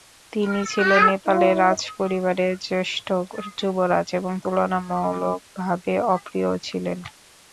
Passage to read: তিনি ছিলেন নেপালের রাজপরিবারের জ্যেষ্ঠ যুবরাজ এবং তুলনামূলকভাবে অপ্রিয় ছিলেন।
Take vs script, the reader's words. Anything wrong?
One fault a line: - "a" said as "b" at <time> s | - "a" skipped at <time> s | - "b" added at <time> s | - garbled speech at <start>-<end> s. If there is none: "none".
none